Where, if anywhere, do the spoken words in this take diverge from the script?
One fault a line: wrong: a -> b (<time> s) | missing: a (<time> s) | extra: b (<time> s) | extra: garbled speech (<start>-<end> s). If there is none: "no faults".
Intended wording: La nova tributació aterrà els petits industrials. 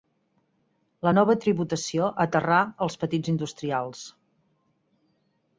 no faults